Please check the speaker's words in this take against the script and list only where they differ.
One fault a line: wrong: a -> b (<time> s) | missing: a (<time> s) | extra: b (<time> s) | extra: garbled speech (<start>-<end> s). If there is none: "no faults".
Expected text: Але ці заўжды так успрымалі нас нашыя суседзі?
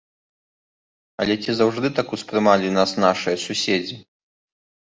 no faults